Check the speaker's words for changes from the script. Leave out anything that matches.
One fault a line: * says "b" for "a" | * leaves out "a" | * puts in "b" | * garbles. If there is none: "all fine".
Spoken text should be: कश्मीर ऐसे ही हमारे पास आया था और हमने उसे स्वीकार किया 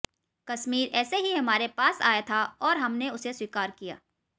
all fine